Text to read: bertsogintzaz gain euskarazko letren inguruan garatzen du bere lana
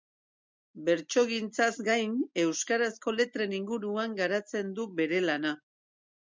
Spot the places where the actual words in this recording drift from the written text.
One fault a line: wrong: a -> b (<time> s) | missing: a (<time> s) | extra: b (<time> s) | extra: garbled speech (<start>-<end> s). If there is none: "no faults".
no faults